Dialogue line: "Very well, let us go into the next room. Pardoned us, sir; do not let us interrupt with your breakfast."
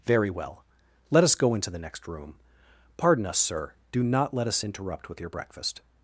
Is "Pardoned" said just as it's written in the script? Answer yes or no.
no